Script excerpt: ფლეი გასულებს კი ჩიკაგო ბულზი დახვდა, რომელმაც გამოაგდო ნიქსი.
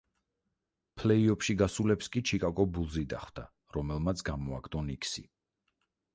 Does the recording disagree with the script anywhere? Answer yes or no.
yes